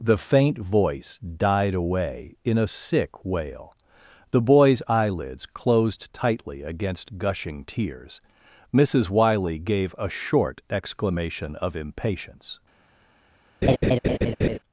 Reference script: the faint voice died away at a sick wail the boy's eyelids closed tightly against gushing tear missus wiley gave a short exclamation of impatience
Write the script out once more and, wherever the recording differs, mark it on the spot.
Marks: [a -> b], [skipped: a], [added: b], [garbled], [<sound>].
the faint voice died away [at -> in] a sick wail the boy's eyelids closed tightly against gushing [tear -> tears] missus wiley gave a short exclamation of impatience [laugh]